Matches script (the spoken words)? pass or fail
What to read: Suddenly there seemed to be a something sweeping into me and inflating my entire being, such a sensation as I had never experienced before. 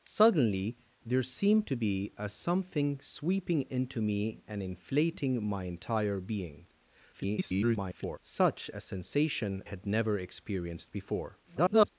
fail